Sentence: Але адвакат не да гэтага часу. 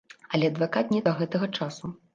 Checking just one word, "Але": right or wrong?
right